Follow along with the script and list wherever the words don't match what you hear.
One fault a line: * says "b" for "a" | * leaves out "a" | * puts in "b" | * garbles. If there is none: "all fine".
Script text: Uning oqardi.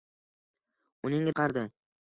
all fine